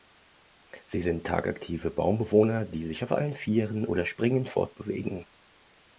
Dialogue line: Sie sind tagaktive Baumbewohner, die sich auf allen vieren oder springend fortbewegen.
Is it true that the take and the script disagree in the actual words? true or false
false